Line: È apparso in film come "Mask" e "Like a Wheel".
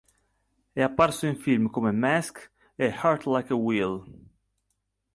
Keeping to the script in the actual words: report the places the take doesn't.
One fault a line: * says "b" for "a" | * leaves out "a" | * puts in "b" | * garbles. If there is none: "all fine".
* puts in "Heart"